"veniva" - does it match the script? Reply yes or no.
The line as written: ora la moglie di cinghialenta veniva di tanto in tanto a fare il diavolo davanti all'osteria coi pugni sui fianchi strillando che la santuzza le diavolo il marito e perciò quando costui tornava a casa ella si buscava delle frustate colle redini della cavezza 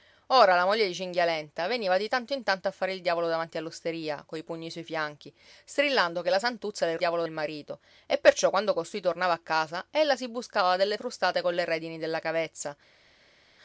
yes